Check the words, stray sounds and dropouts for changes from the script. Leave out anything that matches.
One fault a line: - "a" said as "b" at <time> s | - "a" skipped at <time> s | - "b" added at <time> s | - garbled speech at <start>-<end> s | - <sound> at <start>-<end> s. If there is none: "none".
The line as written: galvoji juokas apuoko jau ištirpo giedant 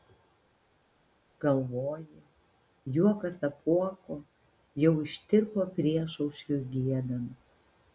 - "priešaušriui" added at 5.8 s